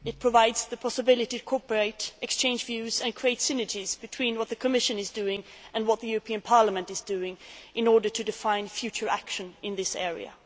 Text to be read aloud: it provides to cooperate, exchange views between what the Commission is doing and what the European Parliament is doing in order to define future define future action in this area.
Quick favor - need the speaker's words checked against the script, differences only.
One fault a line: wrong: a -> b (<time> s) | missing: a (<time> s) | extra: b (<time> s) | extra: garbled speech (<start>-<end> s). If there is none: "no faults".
extra: the possibility (0.7 s)
extra: and create synergies (3.0 s)
missing: define future (9.1 s)